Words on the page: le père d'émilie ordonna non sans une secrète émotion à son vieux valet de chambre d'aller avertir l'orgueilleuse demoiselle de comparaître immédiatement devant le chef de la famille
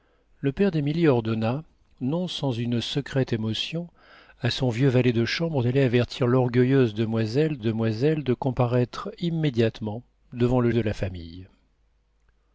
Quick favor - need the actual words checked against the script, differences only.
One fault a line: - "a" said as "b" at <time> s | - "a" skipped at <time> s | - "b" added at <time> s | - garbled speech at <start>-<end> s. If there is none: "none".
- "demoiselle" added at 7.6 s
- "chef" skipped at 10.7 s